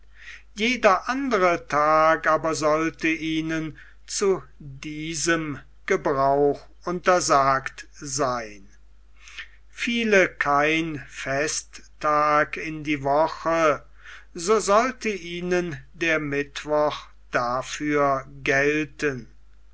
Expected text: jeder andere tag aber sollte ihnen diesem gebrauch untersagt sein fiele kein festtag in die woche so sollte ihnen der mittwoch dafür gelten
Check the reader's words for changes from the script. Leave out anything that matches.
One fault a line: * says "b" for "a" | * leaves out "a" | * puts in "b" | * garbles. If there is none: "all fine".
* puts in "zu"